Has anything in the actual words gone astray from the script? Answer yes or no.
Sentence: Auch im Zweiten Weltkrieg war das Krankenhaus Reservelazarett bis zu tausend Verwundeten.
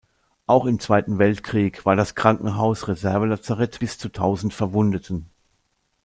no